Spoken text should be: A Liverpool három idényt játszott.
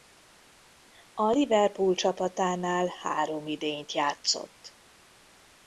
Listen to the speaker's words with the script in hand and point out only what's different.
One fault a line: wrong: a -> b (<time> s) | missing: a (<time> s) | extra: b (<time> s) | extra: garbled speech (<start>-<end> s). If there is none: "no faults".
extra: csapatánál (1.9 s)